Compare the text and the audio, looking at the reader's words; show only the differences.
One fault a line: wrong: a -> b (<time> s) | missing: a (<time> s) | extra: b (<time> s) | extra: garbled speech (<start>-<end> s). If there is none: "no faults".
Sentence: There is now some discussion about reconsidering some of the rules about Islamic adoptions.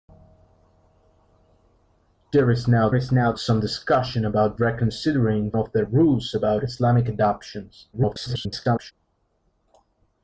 extra: is now (2.9 s)
missing: some (5.5 s)
extra: garbled speech (7.9-8.9 s)